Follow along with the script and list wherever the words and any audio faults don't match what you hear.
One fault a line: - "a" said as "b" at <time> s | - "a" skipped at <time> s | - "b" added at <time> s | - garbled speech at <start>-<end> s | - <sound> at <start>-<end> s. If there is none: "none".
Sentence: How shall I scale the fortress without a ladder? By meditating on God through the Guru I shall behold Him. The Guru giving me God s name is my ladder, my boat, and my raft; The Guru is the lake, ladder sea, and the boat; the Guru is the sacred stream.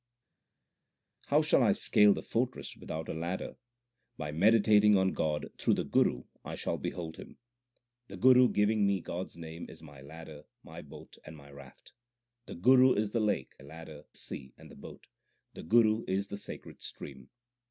none